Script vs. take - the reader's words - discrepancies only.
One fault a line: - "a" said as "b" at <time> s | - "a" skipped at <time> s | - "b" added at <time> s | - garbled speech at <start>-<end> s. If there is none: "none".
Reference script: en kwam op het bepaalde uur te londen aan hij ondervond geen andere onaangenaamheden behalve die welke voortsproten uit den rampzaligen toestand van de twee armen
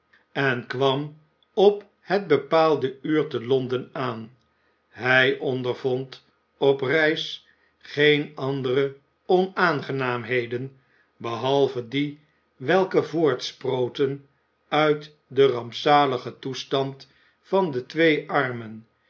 - "op reis" added at 6.6 s